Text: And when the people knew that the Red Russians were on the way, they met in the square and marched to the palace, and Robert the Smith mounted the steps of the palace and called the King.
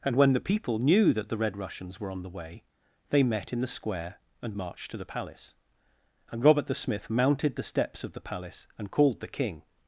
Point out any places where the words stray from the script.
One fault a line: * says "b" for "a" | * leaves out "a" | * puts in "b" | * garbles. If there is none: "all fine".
all fine